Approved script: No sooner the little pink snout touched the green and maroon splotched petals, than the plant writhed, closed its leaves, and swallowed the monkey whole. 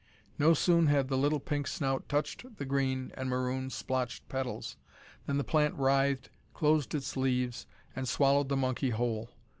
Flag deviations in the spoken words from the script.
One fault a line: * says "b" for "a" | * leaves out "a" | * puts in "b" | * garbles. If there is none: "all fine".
* puts in "had"